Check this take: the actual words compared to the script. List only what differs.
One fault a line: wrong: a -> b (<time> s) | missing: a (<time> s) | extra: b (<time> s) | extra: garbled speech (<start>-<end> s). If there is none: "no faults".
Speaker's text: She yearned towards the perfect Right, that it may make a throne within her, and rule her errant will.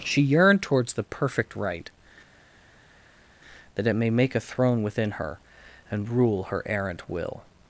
no faults